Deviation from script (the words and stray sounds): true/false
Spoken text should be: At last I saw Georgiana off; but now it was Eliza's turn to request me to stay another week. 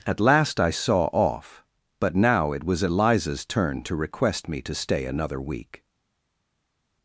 true